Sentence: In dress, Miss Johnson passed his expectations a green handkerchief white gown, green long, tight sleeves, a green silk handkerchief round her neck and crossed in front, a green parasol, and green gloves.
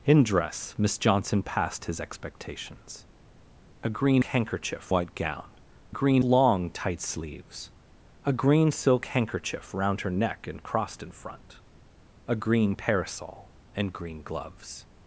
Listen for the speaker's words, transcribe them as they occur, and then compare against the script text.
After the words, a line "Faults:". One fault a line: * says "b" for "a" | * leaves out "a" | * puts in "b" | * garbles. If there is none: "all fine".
In dress, Miss Johnson passed his expectations a green handkerchief white gown, green long, tight sleeves, a green silk handkerchief round her neck and crossed in front, a green parasol, and green gloves.
Faults:
all fine